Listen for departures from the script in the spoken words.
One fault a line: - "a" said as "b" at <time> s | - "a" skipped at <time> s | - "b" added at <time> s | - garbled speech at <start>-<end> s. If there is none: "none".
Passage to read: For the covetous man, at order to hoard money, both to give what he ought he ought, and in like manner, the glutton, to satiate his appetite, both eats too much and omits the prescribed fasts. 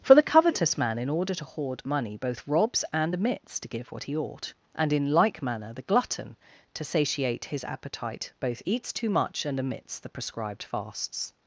- "at" said as "in" at 1.0 s
- "robs and omits" added at 2.5 s
- "he ought" skipped at 4.5 s